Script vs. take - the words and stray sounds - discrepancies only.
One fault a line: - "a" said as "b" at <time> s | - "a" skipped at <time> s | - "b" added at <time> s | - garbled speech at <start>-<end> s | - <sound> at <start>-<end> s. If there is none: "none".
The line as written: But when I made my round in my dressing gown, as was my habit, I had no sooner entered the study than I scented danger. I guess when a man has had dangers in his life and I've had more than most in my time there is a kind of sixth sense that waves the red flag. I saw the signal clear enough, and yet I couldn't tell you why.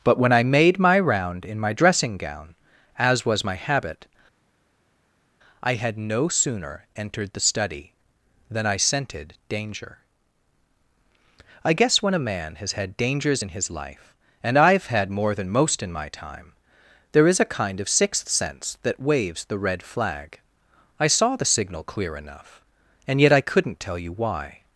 none